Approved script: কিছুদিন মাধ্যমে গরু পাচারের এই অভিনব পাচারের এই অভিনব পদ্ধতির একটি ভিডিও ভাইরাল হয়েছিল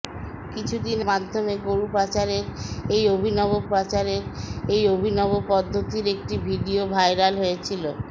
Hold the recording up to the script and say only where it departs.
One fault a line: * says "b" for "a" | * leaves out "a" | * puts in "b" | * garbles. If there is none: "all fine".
all fine